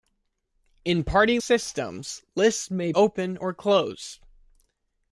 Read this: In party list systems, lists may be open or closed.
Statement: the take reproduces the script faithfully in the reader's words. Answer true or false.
false